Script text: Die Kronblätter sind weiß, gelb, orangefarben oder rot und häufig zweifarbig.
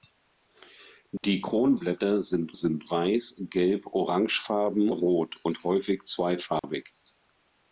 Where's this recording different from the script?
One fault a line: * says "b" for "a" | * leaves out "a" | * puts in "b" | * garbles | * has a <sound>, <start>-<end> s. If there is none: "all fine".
* has a dropout, 1.2-1.2 s
* puts in "sind"
* leaves out "oder"
* has a dropout, 6.6-6.6 s